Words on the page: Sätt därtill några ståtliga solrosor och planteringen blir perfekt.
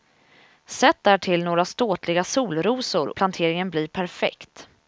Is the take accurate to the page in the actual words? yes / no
no